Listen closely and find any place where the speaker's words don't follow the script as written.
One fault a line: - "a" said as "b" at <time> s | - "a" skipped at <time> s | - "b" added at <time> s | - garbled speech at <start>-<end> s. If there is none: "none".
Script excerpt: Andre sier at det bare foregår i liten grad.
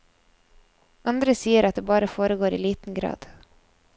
none